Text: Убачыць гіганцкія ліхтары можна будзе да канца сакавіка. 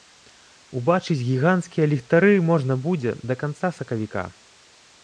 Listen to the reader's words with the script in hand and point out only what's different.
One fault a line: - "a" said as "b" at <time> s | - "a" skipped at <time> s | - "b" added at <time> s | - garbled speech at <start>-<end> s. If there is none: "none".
none